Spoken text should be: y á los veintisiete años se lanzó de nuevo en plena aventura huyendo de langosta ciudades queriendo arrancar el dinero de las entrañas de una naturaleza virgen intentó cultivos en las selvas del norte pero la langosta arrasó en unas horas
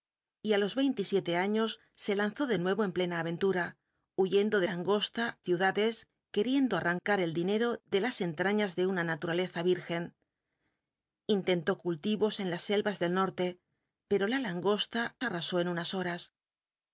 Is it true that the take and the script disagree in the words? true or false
false